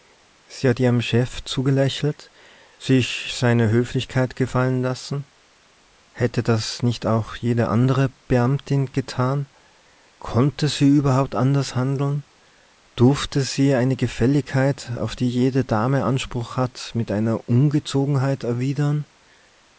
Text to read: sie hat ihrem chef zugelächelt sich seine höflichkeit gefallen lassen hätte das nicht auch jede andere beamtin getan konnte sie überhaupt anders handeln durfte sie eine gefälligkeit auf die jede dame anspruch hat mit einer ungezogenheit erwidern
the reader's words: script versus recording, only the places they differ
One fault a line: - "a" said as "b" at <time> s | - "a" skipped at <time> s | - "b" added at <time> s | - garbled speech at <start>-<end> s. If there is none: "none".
none